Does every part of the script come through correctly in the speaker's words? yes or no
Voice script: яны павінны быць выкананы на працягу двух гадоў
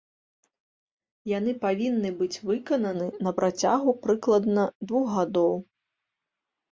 no